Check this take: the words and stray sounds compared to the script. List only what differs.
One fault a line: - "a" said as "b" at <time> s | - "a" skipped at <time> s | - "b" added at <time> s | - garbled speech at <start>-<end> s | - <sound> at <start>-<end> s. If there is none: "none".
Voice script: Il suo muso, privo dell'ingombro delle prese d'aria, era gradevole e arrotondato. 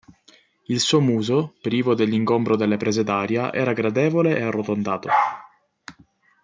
none